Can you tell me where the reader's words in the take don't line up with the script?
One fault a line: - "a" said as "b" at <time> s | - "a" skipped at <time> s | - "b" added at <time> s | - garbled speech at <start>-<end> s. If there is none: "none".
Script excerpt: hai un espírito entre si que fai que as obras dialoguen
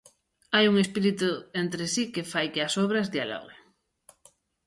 none